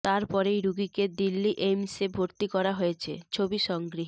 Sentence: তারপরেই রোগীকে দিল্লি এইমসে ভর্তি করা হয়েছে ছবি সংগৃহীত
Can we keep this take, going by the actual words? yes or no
yes